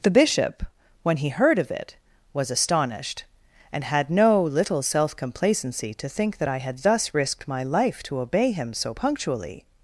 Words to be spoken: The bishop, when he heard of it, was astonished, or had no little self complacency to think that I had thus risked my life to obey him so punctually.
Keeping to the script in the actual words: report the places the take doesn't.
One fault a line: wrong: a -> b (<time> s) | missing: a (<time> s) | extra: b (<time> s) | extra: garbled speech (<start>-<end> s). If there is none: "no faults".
wrong: or -> and (3.7 s)